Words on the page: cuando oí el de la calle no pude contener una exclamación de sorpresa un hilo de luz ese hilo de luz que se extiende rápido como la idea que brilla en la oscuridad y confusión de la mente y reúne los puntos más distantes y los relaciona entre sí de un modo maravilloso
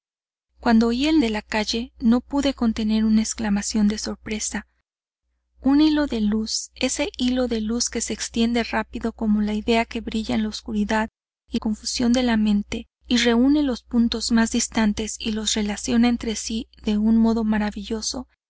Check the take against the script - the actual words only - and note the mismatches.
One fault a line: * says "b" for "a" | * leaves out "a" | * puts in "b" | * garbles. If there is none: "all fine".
all fine